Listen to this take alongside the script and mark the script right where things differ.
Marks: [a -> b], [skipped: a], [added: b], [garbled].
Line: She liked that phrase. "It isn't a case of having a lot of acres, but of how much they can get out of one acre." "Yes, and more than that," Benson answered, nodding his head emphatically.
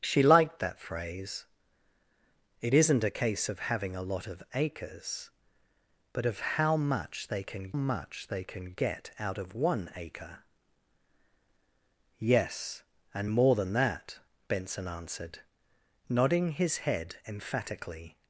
She liked that phrase. "It isn't a case of having a lot of acres, but of how much they can [added: much they can] get out of one acre." "Yes, and more than that," Benson answered, nodding his head emphatically.